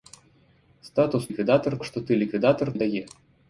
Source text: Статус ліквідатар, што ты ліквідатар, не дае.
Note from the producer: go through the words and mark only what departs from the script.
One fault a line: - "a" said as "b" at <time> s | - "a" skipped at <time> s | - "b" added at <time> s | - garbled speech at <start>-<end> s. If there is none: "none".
none